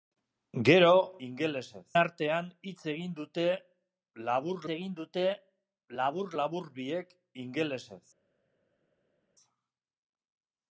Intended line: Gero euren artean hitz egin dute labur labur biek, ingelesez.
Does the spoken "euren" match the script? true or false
false